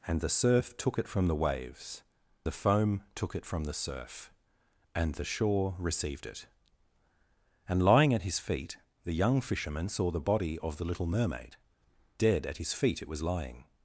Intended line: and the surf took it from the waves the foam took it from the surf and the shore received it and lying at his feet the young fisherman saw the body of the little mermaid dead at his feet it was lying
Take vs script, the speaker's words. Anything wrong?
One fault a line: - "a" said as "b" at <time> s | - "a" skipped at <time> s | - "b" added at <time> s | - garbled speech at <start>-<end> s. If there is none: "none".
none